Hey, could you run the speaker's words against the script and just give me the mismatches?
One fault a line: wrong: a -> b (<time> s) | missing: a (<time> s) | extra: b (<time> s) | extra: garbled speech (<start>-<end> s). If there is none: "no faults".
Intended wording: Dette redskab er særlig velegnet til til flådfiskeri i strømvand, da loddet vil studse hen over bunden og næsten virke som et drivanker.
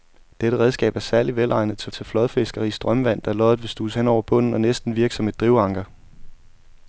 no faults